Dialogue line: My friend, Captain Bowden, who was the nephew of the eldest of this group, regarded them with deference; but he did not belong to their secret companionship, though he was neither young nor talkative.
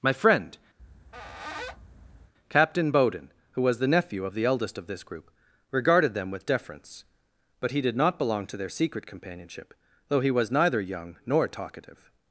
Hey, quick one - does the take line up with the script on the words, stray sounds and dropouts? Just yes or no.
no